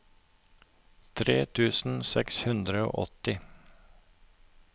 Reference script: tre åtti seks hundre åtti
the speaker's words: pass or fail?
fail